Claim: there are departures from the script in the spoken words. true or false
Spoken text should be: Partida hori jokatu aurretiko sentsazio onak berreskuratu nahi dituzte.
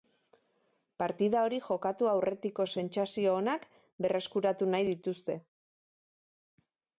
false